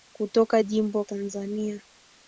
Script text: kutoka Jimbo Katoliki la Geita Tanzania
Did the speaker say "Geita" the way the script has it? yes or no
no